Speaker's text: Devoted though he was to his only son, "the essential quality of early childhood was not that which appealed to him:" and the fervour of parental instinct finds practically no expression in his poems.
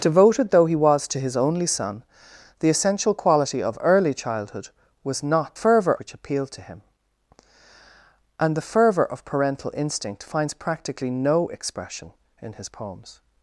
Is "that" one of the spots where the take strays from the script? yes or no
yes